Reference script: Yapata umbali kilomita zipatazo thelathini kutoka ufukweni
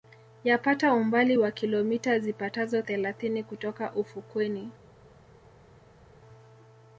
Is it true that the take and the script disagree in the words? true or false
true